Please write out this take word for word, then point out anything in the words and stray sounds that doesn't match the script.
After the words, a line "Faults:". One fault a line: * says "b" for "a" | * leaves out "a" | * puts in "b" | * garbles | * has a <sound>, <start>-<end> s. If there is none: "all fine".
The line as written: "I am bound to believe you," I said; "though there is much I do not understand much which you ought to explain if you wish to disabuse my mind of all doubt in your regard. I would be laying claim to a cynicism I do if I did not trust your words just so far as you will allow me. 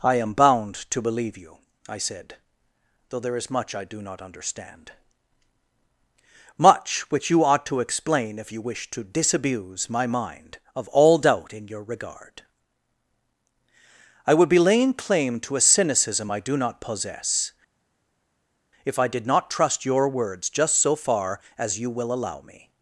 "I am bound to believe you," I said; "though there is much I do not understand much which you ought to explain if you wish to disabuse my mind of all doubt in your regard. I would be laying claim to a cynicism I do not possess, if I did not trust your words just so far as you will allow me.
Faults:
* puts in "not possess"